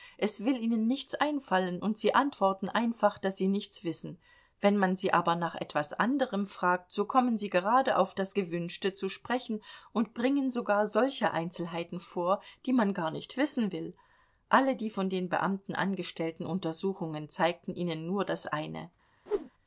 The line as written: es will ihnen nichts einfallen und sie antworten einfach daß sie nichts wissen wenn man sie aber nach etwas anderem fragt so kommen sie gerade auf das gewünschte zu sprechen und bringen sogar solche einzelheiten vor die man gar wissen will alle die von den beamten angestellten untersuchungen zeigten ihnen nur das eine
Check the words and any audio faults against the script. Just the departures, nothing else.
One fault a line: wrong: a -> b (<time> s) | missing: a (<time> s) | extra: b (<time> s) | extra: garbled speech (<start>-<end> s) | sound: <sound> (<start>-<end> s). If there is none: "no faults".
extra: nicht (13.1 s)
sound: whoosh (19.3-19.5 s)